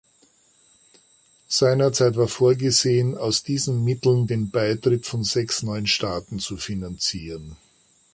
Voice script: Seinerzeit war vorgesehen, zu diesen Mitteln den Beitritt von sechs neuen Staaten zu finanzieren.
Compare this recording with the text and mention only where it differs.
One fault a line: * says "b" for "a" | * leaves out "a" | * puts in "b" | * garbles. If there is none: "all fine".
* says "aus" for "zu"